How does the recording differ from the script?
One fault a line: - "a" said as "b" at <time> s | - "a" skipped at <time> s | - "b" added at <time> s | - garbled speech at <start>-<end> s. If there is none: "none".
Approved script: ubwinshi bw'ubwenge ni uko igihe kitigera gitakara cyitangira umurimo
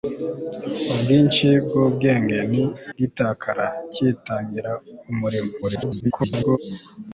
- "uko igihe kitigera" skipped at 2.6 s
- garbled speech at 5.6-6.6 s